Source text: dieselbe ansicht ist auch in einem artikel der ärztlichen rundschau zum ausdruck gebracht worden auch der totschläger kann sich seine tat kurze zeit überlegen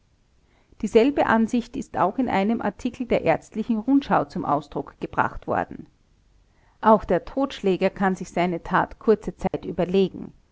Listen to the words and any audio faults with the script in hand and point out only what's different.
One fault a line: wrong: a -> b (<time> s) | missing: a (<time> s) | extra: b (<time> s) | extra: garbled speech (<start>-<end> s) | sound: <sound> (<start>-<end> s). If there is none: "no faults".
sound: dropout (9.5-9.5 s)